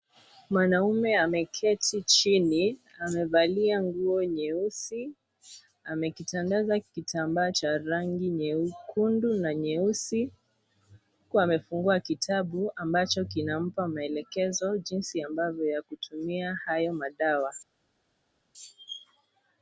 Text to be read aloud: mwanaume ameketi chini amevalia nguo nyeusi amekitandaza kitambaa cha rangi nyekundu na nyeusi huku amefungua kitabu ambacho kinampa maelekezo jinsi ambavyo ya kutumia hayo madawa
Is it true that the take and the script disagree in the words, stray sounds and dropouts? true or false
false